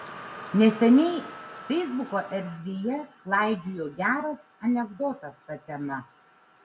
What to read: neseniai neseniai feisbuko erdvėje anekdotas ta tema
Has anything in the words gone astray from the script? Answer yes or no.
yes